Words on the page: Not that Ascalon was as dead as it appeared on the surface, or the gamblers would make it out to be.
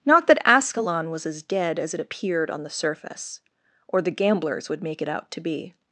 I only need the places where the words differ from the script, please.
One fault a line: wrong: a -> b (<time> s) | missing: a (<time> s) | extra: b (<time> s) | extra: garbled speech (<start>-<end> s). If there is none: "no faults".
no faults